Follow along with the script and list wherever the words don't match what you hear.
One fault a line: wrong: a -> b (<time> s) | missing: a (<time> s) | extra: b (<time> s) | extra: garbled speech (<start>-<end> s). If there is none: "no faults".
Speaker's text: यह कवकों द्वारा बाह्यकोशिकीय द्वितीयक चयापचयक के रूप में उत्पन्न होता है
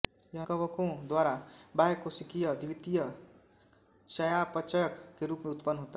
no faults